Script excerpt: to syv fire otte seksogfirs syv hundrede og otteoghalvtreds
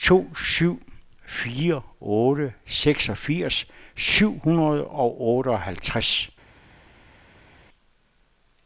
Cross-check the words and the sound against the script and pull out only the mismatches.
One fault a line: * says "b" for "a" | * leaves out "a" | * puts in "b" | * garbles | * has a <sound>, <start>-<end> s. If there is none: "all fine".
all fine